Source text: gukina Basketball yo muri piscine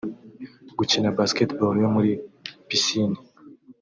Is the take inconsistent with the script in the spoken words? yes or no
no